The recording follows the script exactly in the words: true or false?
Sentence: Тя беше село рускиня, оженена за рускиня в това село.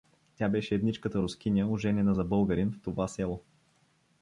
false